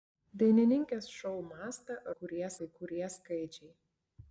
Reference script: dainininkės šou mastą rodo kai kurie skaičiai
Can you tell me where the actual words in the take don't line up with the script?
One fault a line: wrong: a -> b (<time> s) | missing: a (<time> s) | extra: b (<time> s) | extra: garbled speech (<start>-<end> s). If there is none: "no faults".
wrong: rodo -> kurie (2.2 s)